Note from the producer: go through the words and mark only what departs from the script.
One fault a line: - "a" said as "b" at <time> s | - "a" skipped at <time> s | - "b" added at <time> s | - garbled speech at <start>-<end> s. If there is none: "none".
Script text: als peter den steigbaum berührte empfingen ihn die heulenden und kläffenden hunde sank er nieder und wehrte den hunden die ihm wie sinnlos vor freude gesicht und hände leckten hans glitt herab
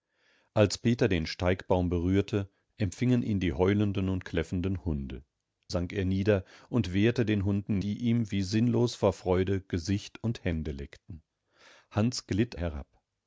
none